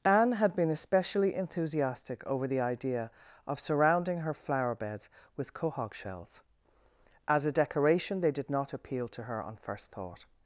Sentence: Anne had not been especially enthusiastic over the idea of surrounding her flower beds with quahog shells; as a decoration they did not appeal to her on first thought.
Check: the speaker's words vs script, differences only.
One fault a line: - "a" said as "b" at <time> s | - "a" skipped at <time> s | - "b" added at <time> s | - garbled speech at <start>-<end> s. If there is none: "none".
- "not" skipped at 0.6 s